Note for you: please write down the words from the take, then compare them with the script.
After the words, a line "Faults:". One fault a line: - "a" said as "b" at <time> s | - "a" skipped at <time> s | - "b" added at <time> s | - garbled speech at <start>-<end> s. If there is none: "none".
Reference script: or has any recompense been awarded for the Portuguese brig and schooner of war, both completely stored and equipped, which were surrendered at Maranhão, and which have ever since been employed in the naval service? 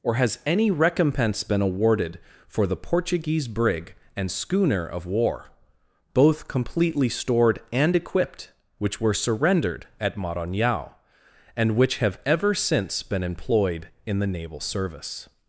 or has any recompense been awarded for the Portuguese brig and schooner of war, both completely stored and equipped, which were surrendered at Maranhão, and which have ever since been employed in the naval service?
Faults:
none